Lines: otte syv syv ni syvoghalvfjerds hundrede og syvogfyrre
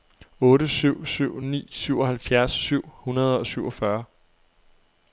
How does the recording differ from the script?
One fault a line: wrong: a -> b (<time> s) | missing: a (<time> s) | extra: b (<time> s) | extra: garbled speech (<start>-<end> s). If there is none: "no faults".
extra: syv (2.5 s)